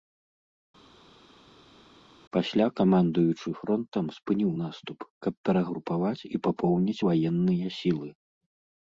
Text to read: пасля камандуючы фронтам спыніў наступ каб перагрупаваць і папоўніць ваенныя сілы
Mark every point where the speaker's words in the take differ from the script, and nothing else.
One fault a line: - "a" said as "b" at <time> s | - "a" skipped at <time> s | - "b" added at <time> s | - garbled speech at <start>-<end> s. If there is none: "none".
none